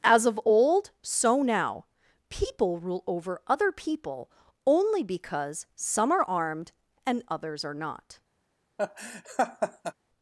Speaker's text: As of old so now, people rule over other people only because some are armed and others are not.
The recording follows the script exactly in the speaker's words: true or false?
true